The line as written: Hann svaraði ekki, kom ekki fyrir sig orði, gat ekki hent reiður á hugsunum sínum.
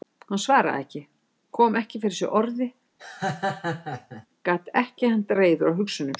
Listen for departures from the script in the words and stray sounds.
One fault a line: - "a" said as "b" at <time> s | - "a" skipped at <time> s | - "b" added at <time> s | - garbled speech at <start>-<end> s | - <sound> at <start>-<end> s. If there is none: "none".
- laugh at 3.0-4.3 s